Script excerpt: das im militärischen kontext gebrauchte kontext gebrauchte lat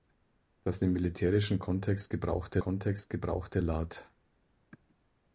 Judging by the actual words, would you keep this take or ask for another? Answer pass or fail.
pass